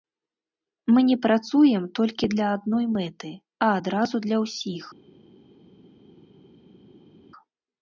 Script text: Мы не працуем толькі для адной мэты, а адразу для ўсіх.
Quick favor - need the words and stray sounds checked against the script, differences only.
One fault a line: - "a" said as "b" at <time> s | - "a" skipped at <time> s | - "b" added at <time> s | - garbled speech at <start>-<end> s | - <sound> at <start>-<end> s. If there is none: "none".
none